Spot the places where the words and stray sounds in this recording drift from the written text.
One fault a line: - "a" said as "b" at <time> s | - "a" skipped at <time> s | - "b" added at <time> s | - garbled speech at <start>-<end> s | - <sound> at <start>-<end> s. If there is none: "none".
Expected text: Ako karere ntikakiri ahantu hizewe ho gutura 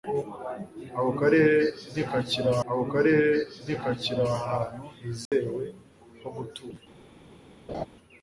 - "ako karere ntikakiri" added at 2.7 s
- dropout at 5.3-5.3 s
- laugh at 7.7-7.9 s